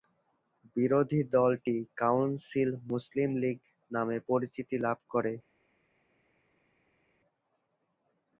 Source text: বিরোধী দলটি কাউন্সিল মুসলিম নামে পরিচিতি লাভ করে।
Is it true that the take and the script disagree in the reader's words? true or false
true